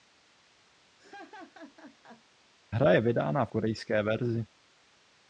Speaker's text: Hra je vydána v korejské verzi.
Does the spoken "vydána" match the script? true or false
true